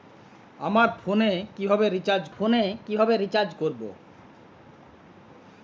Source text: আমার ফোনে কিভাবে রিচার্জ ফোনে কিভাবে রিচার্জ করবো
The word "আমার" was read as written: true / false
true